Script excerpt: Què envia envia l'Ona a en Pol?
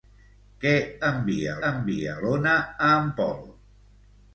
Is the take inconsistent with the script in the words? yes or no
no